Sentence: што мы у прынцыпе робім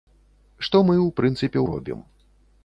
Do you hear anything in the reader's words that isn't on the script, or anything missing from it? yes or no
no